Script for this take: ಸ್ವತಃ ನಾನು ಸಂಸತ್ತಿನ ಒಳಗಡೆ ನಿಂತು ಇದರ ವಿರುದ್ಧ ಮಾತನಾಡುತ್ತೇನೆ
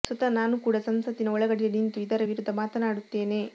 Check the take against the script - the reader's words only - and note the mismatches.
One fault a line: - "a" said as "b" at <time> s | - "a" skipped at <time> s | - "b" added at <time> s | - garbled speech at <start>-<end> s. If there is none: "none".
- "ಕೂಡ" added at 0.6 s